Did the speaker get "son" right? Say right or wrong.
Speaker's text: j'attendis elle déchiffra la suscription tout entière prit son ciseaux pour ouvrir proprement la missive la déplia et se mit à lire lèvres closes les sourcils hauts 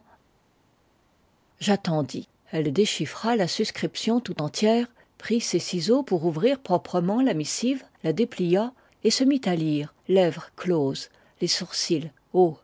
wrong